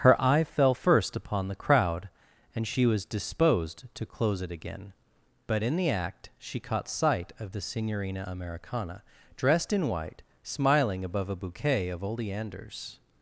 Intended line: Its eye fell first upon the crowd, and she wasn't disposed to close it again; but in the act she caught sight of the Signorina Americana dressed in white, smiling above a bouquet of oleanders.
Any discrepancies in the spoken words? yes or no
yes